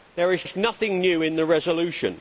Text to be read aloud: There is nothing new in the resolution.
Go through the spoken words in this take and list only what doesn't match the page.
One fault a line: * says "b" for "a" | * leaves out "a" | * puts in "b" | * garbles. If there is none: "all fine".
* puts in "is"